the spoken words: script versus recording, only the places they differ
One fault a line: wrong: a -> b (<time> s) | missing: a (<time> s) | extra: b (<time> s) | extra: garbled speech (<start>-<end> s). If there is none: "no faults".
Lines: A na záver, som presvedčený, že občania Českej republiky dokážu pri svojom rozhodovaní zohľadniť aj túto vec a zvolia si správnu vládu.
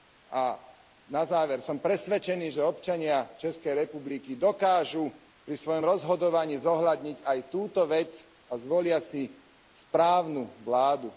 no faults